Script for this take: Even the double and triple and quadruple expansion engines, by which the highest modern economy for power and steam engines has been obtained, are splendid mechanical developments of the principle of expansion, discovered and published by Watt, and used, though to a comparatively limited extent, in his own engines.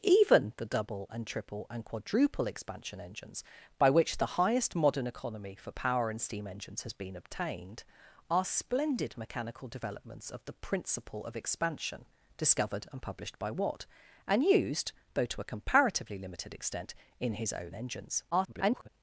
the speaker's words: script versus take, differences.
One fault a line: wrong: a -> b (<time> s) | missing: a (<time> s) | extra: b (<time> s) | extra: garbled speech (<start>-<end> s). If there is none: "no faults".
extra: garbled speech (18.3-18.9 s)